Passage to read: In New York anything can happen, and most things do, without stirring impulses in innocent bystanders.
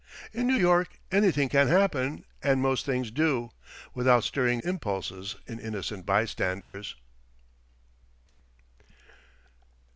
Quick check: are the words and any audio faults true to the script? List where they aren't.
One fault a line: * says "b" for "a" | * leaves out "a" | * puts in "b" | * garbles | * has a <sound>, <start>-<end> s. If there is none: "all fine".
* has a dropout, 6.6-6.7 s